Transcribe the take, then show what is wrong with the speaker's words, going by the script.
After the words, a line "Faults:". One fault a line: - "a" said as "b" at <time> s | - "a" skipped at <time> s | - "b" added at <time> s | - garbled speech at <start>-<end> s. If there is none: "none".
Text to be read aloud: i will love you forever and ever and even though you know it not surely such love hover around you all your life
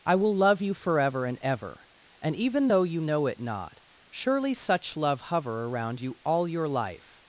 i will love you forever and ever and even though you know it not surely such love hover around you all your life
Faults:
none